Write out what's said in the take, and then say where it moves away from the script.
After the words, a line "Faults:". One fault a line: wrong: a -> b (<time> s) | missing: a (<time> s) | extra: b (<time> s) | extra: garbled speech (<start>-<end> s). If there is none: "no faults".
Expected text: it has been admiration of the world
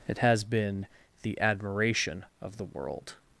it has been the admiration of the world
Faults:
extra: the (1.2 s)